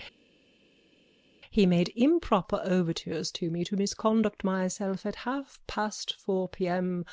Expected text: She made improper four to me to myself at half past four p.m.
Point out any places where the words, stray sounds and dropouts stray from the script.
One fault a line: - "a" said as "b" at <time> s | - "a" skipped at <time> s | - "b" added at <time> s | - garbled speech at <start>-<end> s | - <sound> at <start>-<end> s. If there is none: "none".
- "She" said as "He" at 1.5 s
- "four" said as "overtures" at 2.6 s
- "misconduct" added at 3.7 s